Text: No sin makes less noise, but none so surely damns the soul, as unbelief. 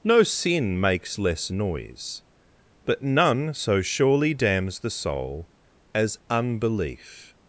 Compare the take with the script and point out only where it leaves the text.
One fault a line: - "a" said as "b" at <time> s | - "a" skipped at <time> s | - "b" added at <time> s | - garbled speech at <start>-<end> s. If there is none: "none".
none